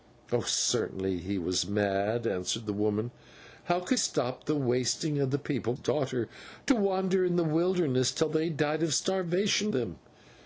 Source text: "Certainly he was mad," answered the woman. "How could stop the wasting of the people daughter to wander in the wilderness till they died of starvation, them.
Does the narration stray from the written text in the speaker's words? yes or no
no